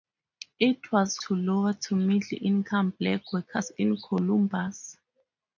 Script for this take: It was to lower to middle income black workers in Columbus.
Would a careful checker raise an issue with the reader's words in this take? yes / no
no